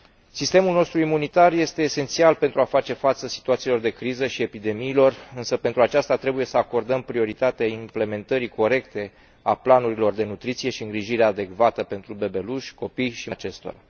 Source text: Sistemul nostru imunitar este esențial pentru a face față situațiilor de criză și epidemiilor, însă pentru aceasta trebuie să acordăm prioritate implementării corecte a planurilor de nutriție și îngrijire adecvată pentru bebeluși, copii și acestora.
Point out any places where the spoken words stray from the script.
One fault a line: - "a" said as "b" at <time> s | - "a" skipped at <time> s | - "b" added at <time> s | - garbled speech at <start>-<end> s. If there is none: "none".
none